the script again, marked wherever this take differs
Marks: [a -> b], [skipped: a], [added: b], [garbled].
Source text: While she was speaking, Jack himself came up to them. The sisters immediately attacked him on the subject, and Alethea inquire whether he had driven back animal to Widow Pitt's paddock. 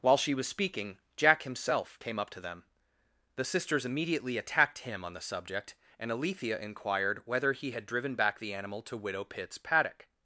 While she was speaking, Jack himself came up to them. The sisters immediately attacked him on the subject, and Alethea [inquire -> inquired] whether he had driven back [added: the] animal to Widow Pitt's paddock.